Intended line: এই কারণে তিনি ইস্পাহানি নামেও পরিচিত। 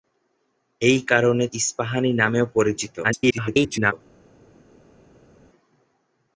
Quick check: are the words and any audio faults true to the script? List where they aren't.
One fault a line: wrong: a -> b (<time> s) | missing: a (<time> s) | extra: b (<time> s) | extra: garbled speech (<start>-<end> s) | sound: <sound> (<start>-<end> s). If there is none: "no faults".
missing: তিনি (1.4 s)
extra: garbled speech (3.0-3.9 s)